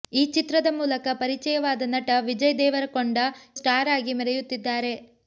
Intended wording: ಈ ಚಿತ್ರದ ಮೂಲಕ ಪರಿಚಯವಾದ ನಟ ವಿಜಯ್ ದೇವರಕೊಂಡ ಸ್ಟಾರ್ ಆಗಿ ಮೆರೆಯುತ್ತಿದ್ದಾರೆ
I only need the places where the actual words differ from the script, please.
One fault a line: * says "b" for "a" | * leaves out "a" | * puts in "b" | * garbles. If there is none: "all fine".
all fine